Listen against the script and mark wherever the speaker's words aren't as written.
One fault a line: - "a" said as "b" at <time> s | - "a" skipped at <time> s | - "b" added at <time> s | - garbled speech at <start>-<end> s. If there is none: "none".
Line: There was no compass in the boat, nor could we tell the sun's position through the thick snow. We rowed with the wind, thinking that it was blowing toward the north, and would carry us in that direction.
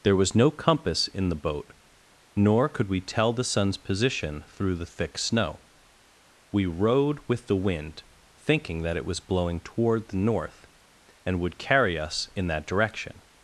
none